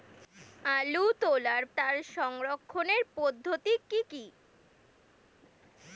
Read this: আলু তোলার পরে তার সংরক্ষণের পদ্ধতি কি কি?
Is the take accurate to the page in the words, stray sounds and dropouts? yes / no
no